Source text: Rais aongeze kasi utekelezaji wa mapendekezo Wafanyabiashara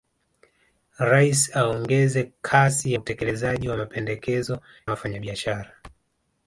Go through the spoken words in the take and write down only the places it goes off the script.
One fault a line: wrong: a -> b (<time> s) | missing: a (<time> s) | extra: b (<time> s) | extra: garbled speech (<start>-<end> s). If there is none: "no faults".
no faults